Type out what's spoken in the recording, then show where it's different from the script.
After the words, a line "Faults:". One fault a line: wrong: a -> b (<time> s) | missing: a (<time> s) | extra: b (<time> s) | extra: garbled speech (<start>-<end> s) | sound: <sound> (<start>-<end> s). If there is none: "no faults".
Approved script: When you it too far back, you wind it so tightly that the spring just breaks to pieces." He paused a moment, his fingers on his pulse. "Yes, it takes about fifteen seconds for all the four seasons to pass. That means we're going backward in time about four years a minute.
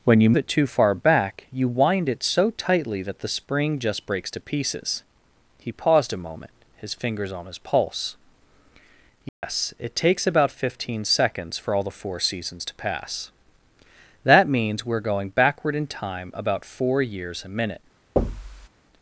When you it too far back, you wind it so tightly that the spring just breaks to pieces." He paused a moment, his fingers on his pulse. "Yes, it takes about fifteen seconds for all the four seasons to pass. That means we're going backward in time about four years a minute.
Faults:
sound: dropout (9.3-9.4 s)
sound: thud (18.2-18.7 s)